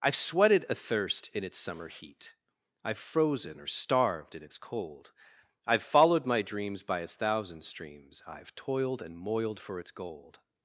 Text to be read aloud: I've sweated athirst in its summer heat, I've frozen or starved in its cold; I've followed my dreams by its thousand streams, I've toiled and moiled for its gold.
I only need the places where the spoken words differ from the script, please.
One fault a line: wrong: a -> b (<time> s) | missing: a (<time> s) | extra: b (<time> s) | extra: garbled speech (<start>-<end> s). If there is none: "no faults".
no faults